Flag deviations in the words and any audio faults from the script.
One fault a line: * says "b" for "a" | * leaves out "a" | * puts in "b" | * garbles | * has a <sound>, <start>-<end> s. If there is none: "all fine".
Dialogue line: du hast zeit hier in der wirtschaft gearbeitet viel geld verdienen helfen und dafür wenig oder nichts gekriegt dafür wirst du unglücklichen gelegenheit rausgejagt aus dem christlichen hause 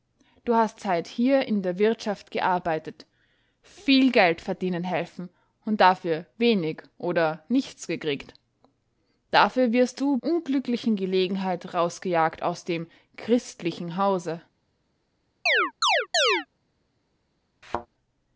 * has a chirp, 15.5-16.5 s
* has a thud, 17.6-17.9 s